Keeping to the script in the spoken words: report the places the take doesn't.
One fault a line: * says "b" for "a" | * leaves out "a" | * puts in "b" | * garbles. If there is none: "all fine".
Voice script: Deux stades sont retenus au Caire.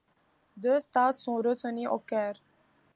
all fine